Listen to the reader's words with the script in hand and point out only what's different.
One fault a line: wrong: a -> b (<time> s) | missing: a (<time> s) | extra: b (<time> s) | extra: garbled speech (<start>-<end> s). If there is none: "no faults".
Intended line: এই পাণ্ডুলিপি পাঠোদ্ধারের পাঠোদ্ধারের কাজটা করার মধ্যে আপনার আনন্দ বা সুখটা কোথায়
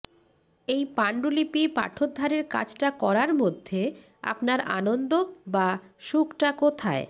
missing: পাঠোদ্ধারের (2.4 s)